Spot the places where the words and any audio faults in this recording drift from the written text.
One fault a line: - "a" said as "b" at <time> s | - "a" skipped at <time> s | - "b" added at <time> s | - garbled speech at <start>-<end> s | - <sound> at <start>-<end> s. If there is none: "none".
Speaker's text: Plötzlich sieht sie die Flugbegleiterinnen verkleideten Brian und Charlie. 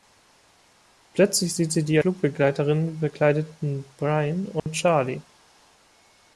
- dropout at 4.6-4.7 s